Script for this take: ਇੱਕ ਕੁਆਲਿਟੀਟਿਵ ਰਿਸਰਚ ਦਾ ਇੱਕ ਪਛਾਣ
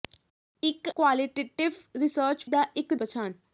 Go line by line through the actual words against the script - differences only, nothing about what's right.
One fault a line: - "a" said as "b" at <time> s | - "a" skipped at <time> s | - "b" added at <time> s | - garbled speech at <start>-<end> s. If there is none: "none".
none